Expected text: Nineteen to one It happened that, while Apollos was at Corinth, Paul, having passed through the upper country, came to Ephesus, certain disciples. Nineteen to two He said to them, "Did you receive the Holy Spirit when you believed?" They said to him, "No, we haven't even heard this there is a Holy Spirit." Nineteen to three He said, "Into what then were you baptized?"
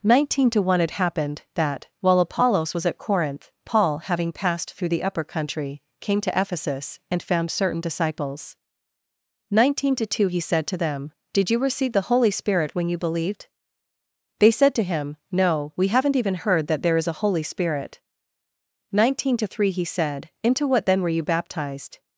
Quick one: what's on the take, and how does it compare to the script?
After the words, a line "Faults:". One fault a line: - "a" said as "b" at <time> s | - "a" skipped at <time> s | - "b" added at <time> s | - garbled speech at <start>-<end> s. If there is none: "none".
Nineteen to one It happened that, while Apollos was at Corinth, Paul, having passed through the upper country, came to Ephesus, and found certain disciples. Nineteen to two He said to them, "Did you receive the Holy Spirit when you believed?" They said to him, "No, we haven't even heard that there is a Holy Spirit." Nineteen to three He said, "Into what then were you baptized?"
Faults:
- "and found" added at 7.1 s
- "this" said as "that" at 16.7 s